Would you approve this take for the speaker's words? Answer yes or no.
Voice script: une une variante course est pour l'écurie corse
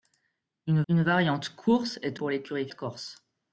yes